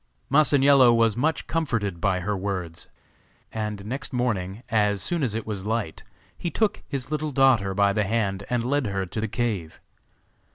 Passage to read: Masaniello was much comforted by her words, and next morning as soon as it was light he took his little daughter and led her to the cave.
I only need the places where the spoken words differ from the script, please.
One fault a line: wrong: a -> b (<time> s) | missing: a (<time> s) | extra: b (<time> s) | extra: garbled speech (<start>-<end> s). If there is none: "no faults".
extra: by the hand (7.7 s)